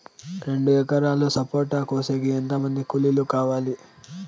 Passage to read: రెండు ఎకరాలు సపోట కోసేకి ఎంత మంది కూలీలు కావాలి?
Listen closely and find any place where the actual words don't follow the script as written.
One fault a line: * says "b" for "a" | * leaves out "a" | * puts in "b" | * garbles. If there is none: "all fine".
all fine